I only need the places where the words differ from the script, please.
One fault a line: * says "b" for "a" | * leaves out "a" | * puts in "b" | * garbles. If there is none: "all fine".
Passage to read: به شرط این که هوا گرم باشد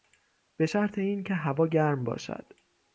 all fine